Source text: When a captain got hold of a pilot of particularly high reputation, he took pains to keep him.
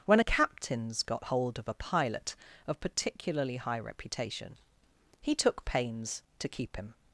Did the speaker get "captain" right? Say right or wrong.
wrong